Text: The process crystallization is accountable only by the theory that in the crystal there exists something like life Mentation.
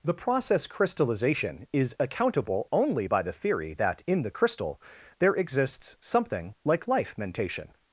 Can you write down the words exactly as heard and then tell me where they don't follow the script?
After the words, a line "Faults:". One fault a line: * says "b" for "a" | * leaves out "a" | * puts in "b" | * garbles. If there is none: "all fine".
The process crystallization is accountable only by the theory that in the crystal there exists something like life Mentation.
Faults:
all fine